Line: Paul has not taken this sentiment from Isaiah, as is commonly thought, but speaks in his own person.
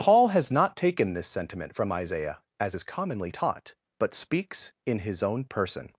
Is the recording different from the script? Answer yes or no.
yes